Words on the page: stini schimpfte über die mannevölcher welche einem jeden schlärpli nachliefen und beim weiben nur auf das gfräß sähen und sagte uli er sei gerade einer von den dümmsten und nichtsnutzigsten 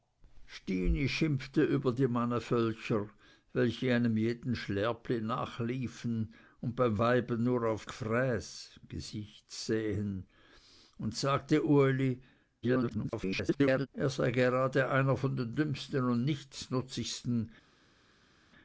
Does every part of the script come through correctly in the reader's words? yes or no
no